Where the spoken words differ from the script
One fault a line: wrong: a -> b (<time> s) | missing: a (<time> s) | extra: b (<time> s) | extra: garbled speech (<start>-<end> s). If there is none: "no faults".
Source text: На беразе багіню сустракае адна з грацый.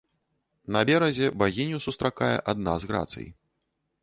no faults